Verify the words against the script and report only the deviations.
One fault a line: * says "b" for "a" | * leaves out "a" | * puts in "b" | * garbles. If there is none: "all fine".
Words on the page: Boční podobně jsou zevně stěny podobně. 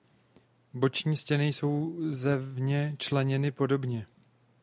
* says "stěny" for "podobně"
* says "členěny" for "stěny"